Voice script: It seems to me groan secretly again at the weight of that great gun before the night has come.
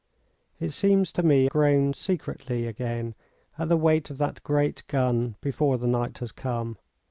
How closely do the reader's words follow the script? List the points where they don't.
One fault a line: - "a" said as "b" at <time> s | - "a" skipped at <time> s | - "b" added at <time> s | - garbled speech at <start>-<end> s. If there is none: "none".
none